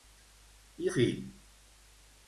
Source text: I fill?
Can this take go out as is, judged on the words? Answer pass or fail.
pass